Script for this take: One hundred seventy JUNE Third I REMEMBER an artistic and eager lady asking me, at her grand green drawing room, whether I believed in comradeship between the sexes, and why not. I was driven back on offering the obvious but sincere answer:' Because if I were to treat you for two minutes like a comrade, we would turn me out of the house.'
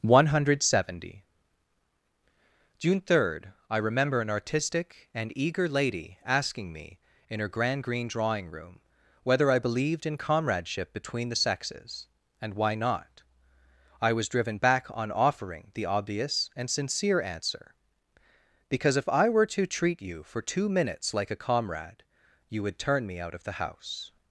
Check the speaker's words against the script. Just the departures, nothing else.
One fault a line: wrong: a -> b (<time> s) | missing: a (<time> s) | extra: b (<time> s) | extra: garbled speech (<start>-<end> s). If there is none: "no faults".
wrong: at -> in (7.3 s)
wrong: but -> and (16.6 s)
wrong: we -> you (22.5 s)